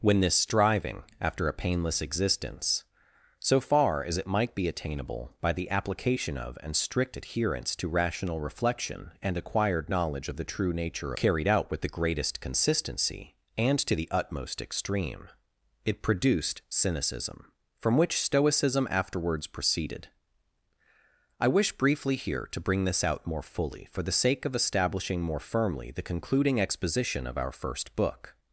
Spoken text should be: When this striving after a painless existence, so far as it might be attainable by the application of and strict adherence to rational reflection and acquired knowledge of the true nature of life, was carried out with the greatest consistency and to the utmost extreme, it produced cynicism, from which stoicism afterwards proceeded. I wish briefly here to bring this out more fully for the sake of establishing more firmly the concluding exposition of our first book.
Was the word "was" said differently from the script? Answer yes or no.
yes